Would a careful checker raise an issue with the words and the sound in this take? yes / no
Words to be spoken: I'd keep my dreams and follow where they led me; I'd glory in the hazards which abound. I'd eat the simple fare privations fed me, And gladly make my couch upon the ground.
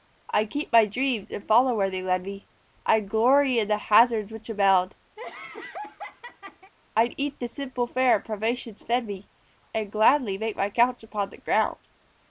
yes